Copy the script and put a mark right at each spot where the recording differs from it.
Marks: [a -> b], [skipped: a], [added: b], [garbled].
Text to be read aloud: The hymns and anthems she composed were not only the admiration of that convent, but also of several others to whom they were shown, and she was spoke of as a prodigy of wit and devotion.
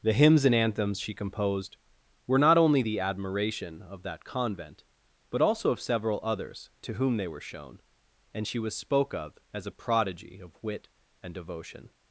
The hymns and anthems she composed were not only the admiration of that convent, but also of several others to whom they were shown, and she was spoke of as a prodigy of wit and devotion.